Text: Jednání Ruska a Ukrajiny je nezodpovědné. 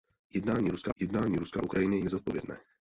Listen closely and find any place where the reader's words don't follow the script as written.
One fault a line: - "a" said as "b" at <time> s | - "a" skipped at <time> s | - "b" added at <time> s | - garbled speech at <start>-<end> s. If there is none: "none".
- "jednání Ruska" added at 1.0 s
- "je" skipped at 2.0 s